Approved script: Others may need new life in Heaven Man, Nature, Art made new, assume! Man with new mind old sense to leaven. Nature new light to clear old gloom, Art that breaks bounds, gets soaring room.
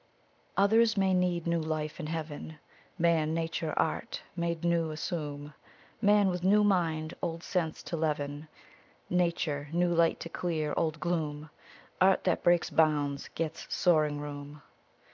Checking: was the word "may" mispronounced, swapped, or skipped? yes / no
no